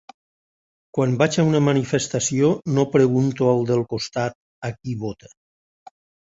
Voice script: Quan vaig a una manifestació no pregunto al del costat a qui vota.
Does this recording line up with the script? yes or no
yes